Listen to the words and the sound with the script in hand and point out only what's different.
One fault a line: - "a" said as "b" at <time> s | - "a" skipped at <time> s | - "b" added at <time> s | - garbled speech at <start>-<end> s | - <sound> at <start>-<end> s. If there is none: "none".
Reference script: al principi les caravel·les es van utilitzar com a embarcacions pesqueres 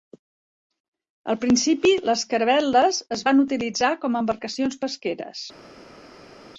none